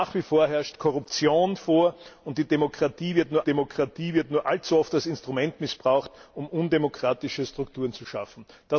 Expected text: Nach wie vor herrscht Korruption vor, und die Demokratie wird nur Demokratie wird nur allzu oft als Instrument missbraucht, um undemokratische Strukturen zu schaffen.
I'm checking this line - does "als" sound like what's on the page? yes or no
yes